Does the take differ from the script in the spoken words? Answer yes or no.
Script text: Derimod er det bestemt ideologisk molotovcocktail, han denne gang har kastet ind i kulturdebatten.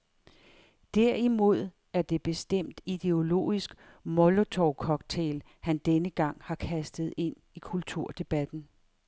no